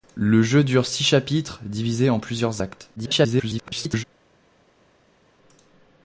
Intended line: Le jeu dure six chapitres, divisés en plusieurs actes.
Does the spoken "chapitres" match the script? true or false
true